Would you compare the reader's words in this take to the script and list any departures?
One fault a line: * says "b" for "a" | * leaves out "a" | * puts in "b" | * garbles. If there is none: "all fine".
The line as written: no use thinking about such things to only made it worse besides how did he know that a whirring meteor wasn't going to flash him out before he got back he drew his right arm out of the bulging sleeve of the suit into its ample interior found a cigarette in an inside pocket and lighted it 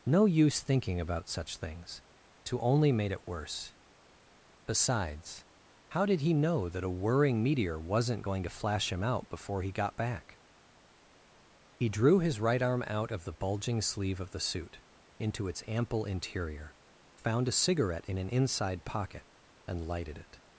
all fine